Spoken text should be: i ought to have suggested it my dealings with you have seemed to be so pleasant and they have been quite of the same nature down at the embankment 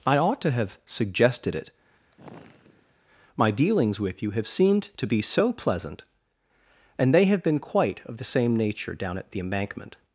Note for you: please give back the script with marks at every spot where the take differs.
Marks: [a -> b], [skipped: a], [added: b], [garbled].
i ought to have suggested it my dealings with you have seemed to be so pleasant and they have been quite of the same nature down at the embankment